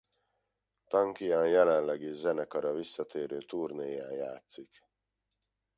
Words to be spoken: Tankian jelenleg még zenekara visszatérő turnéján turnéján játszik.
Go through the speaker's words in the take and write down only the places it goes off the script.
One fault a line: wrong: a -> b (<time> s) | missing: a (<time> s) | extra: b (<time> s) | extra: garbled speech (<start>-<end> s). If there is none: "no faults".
wrong: még -> is (2.0 s)
missing: turnéján (4.1 s)